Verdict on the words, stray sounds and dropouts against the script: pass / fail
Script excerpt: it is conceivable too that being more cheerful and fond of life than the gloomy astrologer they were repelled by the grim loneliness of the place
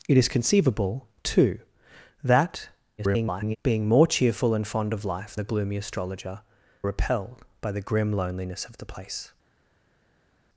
fail